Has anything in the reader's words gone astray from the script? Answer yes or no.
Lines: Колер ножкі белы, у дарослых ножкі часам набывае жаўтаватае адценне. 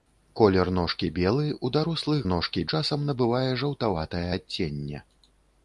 no